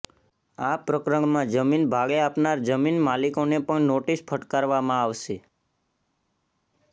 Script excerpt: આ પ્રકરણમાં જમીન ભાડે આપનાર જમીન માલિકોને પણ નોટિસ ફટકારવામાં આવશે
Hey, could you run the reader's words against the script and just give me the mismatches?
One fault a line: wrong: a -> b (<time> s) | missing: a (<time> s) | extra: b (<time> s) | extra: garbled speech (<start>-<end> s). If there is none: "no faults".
no faults